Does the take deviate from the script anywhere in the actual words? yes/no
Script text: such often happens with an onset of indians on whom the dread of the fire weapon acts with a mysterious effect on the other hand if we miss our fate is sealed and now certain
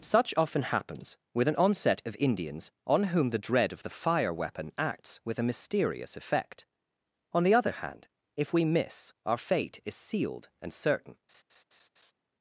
yes